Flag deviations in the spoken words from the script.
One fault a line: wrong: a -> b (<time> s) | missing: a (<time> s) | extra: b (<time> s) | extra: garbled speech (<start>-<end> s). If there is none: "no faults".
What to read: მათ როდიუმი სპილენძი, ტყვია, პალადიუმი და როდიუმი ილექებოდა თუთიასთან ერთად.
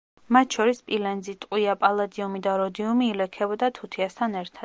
wrong: როდიუმი -> შორის (0.6 s)